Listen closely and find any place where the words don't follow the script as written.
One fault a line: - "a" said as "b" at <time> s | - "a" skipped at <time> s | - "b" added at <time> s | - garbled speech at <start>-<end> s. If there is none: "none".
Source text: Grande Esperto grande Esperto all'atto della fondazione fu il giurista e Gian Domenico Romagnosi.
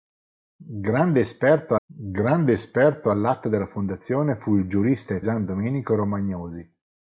none